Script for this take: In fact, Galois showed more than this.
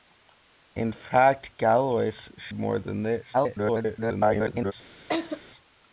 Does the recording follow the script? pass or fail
fail